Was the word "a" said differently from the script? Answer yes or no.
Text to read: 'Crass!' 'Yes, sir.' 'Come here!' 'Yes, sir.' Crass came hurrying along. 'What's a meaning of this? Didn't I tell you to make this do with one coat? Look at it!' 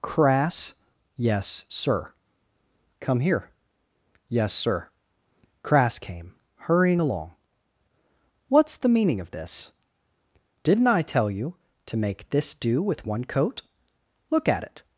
yes